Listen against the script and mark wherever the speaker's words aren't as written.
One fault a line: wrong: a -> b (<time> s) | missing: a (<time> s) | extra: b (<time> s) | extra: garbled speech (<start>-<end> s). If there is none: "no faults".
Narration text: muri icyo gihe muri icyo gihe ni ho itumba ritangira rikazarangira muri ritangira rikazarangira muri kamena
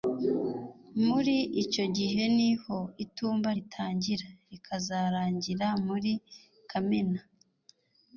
missing: muri icyo gihe (2.2 s)
missing: ritangira rikazarangira muri (6.1 s)